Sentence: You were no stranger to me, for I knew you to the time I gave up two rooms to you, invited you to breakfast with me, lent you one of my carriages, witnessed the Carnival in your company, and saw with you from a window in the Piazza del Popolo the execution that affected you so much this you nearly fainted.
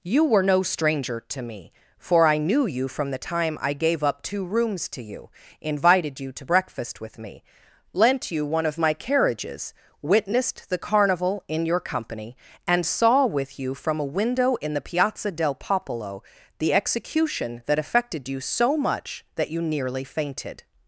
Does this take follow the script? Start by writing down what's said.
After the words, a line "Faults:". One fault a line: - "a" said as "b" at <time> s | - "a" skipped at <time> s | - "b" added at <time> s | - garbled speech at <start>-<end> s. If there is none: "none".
You were no stranger to me, for I knew you from the time I gave up two rooms to you, invited you to breakfast with me, lent you one of my carriages, witnessed the Carnival in your company, and saw with you from a window in the Piazza del Popolo the execution that affected you so much that you nearly fainted.
Faults:
- "to" said as "from" at 2.9 s
- "this" said as "that" at 19.3 s